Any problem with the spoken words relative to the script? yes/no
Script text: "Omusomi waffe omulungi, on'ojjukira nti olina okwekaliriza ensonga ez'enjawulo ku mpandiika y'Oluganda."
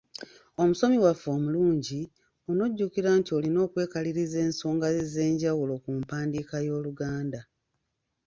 no